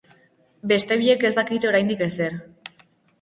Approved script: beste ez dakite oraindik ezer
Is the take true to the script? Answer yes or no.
no